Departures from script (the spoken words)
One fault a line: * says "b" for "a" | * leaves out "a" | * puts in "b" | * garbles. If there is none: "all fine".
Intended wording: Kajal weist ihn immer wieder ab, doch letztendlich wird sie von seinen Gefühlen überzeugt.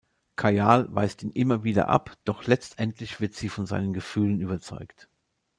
all fine